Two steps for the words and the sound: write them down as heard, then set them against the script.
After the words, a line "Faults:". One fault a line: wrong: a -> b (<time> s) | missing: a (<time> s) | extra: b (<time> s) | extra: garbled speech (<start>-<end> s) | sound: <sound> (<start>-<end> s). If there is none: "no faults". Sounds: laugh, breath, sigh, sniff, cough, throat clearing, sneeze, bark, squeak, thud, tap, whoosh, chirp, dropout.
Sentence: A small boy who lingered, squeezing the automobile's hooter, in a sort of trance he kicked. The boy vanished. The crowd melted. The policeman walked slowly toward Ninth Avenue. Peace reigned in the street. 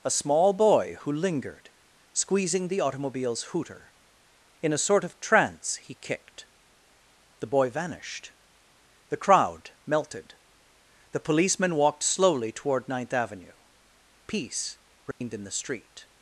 A small boy who lingered, squeezing the automobile's hooter, in a sort of trance he kicked. The boy vanished. The crowd melted. The policeman walked slowly toward Ninth Avenue. Peace reigned in the street.
Faults:
sound: dropout (15.1-15.2 s)